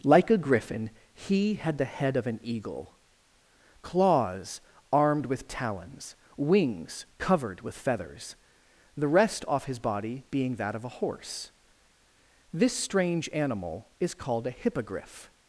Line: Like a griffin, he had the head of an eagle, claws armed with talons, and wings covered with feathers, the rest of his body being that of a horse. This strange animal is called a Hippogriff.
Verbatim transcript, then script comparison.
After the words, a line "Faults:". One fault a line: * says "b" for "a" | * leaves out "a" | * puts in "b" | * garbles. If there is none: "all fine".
Like a griffin, he had the head of an eagle, claws armed with talons, wings covered with feathers, the rest off his body being that of a horse. This strange animal is called a Hippogriff.
Faults:
* leaves out "and"
* says "off" for "of"